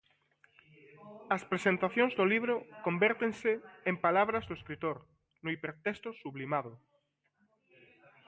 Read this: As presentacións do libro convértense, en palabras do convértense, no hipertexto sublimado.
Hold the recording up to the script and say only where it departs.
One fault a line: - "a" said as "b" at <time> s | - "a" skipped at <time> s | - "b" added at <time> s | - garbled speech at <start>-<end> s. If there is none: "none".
- "convértense" said as "escritor" at 4.6 s